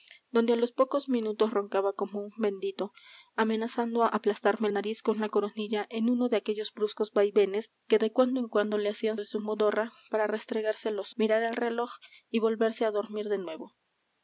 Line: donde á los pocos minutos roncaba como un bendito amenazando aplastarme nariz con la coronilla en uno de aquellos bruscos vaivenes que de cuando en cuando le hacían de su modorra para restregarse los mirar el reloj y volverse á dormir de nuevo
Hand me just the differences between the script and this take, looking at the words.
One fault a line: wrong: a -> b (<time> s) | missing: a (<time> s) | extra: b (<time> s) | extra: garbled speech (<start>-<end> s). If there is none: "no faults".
no faults